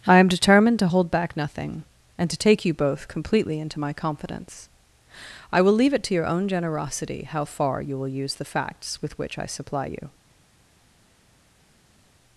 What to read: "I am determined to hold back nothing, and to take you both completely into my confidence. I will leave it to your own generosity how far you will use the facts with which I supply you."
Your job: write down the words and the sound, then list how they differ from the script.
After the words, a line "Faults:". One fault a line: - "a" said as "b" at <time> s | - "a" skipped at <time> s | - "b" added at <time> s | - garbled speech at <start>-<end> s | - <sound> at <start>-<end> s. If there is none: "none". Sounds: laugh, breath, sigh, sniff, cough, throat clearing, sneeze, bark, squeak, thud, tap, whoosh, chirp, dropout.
"I am determined to hold back nothing, and to take you both completely into my confidence. I will leave it to your own generosity how far you will use the facts with which I supply you."
Faults:
none